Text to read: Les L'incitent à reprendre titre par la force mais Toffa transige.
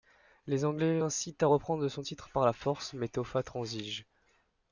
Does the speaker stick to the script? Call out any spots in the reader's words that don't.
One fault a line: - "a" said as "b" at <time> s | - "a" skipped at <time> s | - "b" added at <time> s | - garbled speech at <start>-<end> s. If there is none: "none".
- "Anglais" added at 0.7 s
- "son" added at 1.9 s